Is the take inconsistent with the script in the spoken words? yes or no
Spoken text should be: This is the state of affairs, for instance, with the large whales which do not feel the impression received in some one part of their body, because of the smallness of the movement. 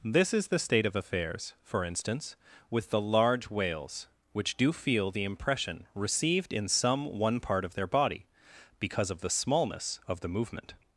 yes